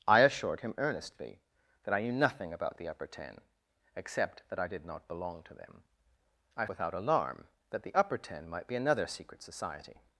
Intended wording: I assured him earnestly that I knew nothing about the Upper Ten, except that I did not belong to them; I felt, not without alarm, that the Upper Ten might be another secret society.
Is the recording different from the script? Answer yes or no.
yes